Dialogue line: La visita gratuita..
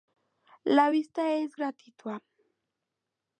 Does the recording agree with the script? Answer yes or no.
no